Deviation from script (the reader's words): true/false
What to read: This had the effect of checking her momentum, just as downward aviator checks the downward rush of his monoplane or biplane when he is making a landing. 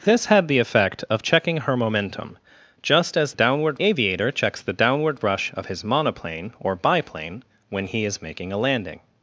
false